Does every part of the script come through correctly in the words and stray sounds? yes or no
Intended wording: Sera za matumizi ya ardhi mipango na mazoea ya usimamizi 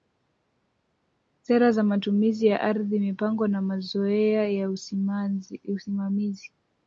yes